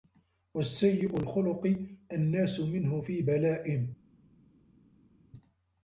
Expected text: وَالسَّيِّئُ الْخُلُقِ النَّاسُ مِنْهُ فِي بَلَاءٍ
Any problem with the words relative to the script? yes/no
no